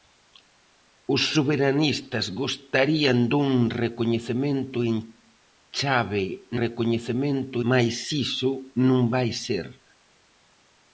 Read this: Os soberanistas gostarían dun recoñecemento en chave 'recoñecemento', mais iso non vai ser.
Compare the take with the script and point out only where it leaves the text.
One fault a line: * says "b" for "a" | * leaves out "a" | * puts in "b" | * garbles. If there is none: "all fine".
all fine